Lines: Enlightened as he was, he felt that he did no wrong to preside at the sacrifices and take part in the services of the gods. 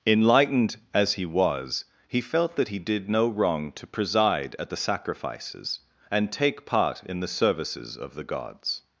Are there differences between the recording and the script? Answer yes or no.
no